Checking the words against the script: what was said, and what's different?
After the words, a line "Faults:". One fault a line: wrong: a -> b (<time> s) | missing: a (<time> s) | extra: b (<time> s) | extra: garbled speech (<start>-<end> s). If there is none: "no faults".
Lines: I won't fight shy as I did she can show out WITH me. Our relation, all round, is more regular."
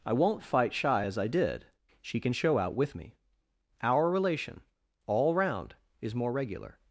I won't fight shy as I did she can show out WITH me. Our relation, all round, is more regular."
Faults:
no faults